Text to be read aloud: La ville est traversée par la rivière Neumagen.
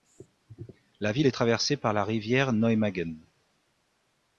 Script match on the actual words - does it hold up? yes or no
yes